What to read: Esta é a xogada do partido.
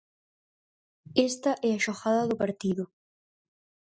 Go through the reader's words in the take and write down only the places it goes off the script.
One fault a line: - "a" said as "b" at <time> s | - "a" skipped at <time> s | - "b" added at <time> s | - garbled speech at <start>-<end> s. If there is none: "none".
none